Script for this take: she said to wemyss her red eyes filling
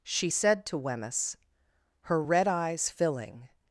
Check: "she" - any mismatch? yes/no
no